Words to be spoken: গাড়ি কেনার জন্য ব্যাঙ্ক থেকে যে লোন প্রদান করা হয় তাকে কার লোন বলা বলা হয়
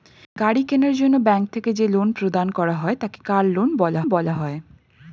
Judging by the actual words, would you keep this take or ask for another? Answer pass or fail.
pass